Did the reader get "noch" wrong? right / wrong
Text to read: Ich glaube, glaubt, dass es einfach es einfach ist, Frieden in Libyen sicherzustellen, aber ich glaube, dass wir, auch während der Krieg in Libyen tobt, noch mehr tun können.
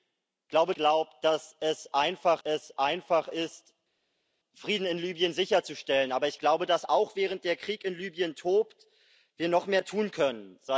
right